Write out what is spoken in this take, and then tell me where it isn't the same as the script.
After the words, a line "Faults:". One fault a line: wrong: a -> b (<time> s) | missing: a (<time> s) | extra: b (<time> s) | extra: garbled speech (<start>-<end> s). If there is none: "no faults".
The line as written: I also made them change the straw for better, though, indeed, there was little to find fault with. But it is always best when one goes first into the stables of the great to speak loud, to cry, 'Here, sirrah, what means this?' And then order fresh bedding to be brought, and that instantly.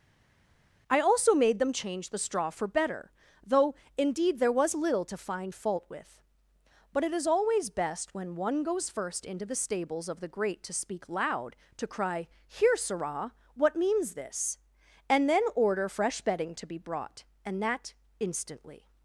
I also made them change the straw for better, though, indeed, there was little to find fault with. But it is always best when one goes first into the stables of the great to speak loud, to cry, 'Here, sirrah, what means this?' And then order fresh bedding to be brought, and that instantly.
Faults:
no faults